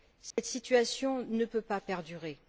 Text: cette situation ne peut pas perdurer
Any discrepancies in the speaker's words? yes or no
no